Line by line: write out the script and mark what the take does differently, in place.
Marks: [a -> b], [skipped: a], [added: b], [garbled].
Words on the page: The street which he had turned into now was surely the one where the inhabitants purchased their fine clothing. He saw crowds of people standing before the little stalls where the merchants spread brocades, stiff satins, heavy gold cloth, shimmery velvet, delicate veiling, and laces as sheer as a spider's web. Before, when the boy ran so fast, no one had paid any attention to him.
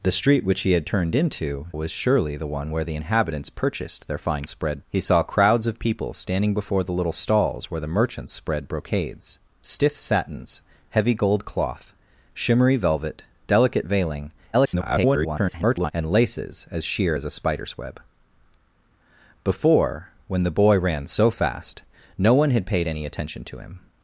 The street which he had turned into [skipped: now] was surely the one where the inhabitants purchased their fine [clothing. -> spread] He saw crowds of people standing before the little stalls where the merchants spread brocades, stiff satins, heavy gold cloth, shimmery velvet, delicate veiling, [garbled] and laces as sheer as a spider's web. Before, when the boy ran so fast, no one had paid any attention to him.